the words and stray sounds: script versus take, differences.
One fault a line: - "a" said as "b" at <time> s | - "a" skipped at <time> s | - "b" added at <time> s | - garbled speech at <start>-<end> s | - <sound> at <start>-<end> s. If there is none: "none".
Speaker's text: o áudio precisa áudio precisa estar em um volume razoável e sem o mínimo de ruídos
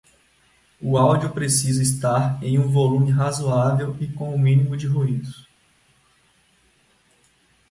- "áudio precisa" skipped at 1.8 s
- "sem" said as "com" at 4.1 s